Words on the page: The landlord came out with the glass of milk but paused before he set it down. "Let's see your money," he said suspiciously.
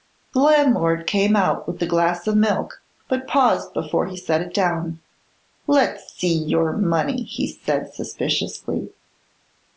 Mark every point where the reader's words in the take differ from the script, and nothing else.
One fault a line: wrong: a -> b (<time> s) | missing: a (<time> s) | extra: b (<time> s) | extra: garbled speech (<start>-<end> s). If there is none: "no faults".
no faults